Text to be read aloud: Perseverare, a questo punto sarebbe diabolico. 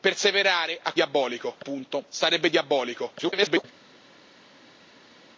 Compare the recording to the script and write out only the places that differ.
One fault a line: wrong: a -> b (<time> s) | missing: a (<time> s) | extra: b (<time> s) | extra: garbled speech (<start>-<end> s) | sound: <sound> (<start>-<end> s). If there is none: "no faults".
wrong: questo -> diabolico (0.9 s)
extra: garbled speech (3.2-3.6 s)